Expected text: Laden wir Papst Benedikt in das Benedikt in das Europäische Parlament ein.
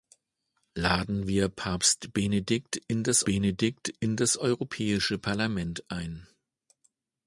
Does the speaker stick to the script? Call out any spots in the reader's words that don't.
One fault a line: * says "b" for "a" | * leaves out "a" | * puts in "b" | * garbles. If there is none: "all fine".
all fine